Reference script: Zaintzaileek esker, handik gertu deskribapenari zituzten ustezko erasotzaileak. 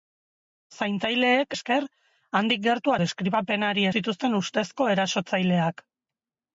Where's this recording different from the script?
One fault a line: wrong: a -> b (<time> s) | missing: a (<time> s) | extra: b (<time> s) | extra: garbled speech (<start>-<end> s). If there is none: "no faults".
no faults